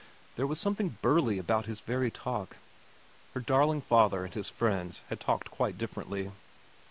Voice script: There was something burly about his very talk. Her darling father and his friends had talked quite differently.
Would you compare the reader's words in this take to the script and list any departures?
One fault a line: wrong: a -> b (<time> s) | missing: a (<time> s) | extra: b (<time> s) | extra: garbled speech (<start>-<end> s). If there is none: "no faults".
no faults